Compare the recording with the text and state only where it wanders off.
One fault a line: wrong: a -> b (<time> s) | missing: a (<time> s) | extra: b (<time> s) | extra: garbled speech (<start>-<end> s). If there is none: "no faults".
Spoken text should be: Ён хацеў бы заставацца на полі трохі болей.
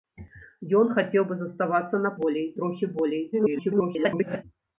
wrong: полі -> болей (2.2 s)
extra: garbled speech (3.3-4.4 s)